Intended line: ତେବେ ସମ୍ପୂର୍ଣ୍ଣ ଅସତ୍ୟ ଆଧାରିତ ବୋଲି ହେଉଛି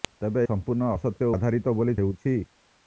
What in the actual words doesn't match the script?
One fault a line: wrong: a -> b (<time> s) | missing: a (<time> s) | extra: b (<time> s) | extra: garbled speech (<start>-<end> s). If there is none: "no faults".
no faults